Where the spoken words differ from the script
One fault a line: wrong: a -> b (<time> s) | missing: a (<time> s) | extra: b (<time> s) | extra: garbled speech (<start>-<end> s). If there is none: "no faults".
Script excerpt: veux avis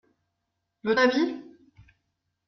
no faults